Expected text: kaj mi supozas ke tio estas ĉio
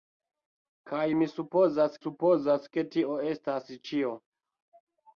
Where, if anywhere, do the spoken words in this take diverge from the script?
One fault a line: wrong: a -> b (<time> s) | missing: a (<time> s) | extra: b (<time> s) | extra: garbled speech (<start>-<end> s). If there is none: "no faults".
extra: supozas (2.0 s)